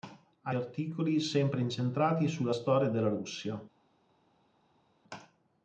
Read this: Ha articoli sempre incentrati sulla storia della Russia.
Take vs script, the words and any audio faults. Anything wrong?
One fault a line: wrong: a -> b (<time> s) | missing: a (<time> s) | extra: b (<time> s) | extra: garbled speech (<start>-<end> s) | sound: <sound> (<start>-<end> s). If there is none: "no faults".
no faults